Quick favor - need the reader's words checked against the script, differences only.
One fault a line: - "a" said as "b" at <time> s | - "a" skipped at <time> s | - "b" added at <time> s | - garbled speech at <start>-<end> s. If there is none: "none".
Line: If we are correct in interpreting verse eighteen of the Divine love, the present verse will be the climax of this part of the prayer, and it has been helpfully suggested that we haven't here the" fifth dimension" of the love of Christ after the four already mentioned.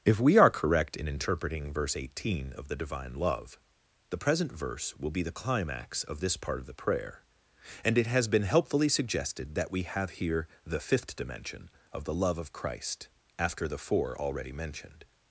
- "haven't" said as "have" at 9.8 s